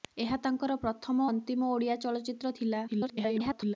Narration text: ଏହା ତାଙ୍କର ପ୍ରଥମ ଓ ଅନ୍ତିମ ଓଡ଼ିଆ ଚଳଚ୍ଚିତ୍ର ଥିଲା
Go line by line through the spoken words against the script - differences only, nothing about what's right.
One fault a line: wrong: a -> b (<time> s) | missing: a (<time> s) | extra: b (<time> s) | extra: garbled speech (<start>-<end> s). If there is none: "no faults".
missing: ଓ (1.3 s)
extra: garbled speech (2.9-3.8 s)